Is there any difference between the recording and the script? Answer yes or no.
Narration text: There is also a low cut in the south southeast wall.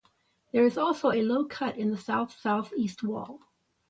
no